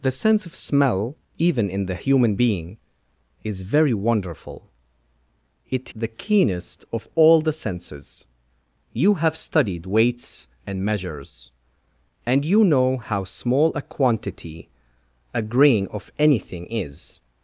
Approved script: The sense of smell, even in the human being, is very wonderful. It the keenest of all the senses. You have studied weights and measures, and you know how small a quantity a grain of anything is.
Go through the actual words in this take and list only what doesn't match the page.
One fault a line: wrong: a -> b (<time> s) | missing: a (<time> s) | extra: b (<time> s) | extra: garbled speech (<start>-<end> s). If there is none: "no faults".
no faults